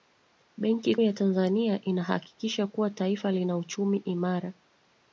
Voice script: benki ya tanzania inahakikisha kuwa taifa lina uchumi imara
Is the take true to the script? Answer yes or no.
yes